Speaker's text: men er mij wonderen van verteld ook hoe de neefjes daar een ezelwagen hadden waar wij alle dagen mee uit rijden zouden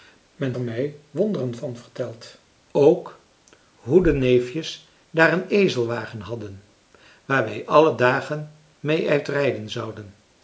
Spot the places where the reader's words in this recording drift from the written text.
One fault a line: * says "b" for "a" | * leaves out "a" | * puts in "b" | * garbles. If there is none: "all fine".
all fine